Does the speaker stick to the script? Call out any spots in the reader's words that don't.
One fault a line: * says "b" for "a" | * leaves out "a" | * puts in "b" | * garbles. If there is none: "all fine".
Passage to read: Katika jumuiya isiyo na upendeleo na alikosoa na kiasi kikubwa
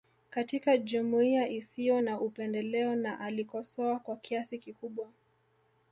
* says "kwa" for "na"